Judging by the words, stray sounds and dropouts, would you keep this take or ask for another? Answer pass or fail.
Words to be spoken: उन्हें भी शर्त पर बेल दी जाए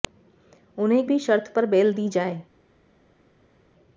pass